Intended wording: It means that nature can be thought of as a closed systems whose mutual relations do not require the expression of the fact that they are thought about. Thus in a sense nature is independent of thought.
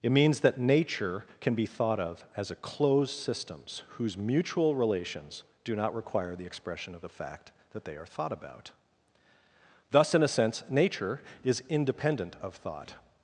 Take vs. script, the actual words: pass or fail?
pass